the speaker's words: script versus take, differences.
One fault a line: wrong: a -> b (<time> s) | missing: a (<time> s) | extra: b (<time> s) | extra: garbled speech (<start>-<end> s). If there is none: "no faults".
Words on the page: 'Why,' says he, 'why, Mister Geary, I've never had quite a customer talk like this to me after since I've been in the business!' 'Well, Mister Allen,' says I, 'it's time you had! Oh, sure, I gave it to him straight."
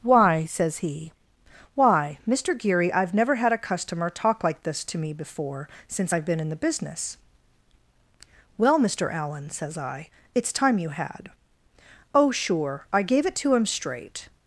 missing: quite (3.5 s)
wrong: after -> before (5.1 s)